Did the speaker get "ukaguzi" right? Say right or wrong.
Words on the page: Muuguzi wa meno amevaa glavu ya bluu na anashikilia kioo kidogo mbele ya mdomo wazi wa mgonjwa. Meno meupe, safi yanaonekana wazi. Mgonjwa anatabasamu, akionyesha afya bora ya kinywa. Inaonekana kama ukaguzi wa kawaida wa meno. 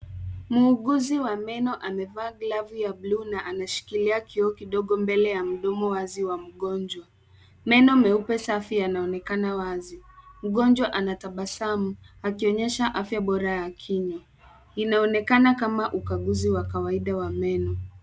right